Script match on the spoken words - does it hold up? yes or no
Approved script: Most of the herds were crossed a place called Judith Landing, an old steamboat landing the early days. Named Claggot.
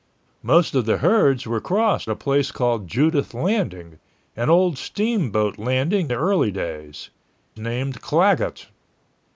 yes